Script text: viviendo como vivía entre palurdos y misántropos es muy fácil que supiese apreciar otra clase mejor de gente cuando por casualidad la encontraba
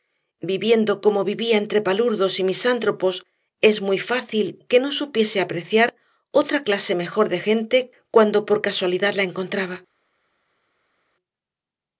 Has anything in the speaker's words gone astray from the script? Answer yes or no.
yes